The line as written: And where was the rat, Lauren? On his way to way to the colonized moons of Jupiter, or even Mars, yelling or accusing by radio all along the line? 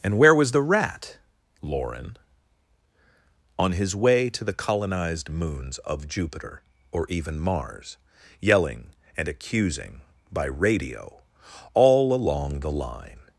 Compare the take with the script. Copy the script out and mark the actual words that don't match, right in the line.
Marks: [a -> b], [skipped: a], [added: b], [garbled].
And where was the rat, Lauren? On his way to [skipped: way to] the colonized moons of Jupiter, or even Mars, yelling [or -> and] accusing by radio all along the line?